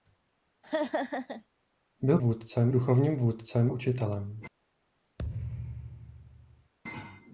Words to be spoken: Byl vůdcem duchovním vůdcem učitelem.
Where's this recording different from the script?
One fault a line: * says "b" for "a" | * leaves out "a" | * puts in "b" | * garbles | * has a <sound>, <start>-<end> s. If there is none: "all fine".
* has a laugh, 0.6-1.5 s
* has a thud, 5.2-6.7 s